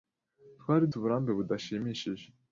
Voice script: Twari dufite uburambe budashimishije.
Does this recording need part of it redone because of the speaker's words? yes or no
yes